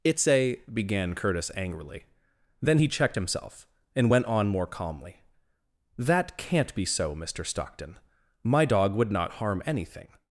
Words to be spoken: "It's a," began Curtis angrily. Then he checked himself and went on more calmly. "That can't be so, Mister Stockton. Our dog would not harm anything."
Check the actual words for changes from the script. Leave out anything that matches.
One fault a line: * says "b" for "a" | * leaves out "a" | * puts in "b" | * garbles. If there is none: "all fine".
* says "My" for "Our"